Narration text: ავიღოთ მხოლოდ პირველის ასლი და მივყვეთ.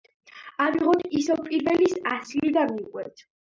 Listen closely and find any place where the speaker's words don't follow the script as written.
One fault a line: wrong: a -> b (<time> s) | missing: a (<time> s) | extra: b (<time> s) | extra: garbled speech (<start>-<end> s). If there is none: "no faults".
wrong: მხოლოდ -> ისევ (1.2 s)